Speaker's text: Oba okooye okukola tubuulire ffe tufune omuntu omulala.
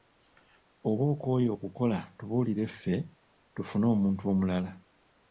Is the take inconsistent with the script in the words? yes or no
no